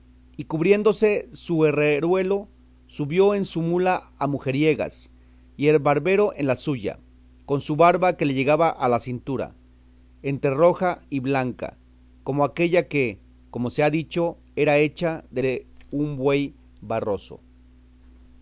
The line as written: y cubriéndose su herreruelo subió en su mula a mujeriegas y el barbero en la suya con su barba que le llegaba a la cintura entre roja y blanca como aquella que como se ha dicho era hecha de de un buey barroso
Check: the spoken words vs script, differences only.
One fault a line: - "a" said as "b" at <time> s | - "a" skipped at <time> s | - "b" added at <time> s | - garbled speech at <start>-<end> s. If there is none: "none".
none